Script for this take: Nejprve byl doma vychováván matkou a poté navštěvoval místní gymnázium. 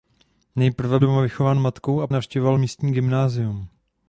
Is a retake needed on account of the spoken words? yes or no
yes